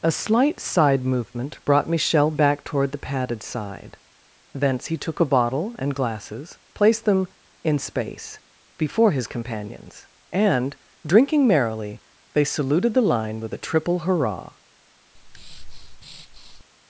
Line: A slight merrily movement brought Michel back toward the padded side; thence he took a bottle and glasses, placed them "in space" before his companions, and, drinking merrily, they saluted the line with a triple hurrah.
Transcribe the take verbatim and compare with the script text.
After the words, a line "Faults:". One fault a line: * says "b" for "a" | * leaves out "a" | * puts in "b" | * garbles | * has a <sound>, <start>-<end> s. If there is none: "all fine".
A slight side movement brought Michel back toward the padded side; thence he took a bottle and glasses, placed them "in space" before his companions, and, drinking merrily, they saluted the line with a triple hurrah.
Faults:
* says "side" for "merrily"
* has a breath, 15.2-16.6 s